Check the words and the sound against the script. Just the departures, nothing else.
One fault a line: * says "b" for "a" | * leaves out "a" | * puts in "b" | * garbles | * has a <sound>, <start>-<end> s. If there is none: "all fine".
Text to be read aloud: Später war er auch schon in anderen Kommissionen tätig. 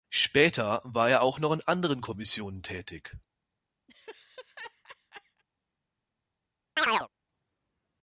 * says "noch" for "schon"
* has a laugh, 3.9-5.4 s
* has a chirp, 6.8-7.1 s